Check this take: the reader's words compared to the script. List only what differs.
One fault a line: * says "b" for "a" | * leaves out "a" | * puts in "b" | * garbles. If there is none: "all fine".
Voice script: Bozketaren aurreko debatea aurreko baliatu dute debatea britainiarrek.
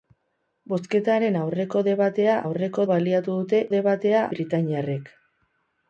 all fine